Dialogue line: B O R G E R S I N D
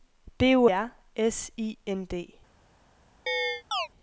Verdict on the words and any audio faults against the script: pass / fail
fail